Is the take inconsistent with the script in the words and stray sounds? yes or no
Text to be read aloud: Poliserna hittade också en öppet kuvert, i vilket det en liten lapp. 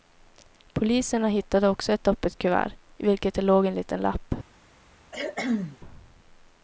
yes